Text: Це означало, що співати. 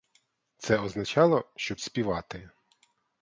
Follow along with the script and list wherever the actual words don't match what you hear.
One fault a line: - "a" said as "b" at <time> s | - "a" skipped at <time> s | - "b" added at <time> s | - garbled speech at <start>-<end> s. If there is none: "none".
none